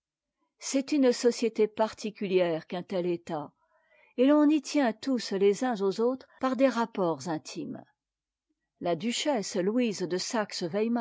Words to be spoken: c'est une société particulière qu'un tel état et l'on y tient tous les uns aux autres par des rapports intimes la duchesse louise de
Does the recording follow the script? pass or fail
pass